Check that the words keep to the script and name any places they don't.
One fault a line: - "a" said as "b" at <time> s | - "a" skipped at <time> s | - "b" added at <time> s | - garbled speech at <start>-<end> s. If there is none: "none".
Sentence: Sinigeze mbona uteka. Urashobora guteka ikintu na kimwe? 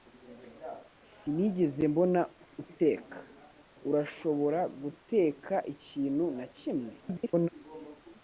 - garbled speech at 7.0-7.5 s